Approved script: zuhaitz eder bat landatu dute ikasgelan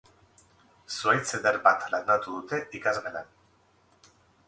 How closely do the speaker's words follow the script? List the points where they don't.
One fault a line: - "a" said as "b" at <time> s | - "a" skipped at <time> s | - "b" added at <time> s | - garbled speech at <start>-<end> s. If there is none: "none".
none